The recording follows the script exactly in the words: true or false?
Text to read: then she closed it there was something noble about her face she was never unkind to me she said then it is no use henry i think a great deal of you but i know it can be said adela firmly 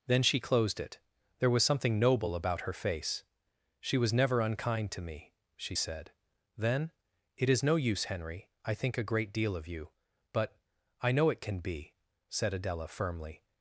true